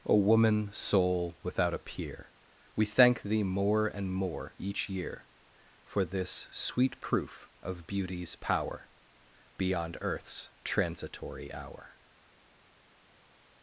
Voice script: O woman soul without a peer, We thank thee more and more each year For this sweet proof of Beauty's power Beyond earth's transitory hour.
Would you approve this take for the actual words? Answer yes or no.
yes